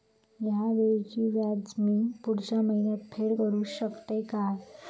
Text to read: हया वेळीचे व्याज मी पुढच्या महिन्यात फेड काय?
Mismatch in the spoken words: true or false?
true